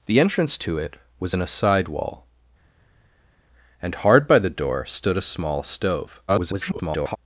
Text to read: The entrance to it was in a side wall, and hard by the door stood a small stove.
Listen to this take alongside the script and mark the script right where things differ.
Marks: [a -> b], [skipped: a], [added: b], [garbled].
The entrance to it was in a side wall, and hard by the door stood a small stove. [garbled]